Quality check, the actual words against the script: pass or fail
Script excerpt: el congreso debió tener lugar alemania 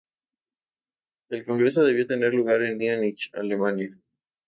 fail